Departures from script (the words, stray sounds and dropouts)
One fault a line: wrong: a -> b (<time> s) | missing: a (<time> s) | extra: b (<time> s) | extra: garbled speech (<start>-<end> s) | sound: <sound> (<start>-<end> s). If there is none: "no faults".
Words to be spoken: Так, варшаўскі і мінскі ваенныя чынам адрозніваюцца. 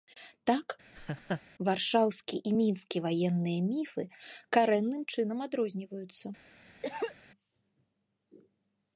sound: laugh (0.9-1.4 s)
extra: міфы карэнным (3.7 s)
sound: cough (6.8-7.2 s)